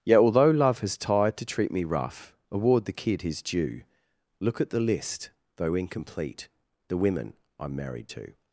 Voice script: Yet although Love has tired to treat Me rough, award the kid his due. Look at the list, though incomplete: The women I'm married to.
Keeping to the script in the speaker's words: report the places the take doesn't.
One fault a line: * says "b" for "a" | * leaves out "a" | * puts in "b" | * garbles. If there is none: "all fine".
all fine